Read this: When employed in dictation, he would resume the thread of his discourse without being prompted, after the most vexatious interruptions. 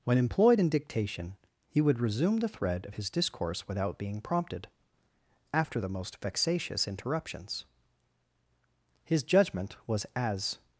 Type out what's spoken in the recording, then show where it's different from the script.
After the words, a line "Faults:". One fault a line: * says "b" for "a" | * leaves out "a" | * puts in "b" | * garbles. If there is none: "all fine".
When employed in dictation, he would resume the thread of his discourse without being prompted, after the most vexatious interruptions. His judgment was as
Faults:
* puts in "His judgment was as"